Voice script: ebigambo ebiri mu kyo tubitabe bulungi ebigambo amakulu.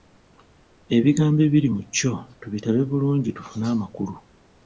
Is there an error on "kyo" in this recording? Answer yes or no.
no